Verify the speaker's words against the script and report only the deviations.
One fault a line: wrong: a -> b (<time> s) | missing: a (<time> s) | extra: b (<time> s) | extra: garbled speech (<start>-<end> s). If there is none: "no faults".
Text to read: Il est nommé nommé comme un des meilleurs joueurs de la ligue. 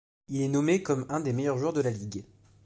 missing: nommé (0.8 s)